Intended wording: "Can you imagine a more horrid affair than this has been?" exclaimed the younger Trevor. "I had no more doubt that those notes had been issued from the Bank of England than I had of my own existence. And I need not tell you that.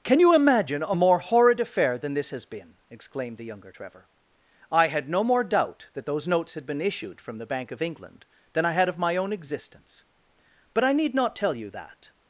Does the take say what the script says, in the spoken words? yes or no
no